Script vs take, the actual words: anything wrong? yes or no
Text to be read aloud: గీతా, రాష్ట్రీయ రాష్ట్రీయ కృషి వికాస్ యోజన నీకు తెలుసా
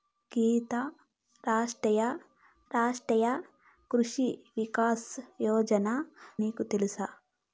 no